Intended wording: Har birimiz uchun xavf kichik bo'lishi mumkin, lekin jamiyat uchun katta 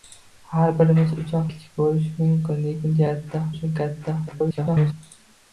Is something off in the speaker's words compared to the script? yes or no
yes